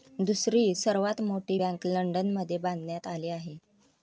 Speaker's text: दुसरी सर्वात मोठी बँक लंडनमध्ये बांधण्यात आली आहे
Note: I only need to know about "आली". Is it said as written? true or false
true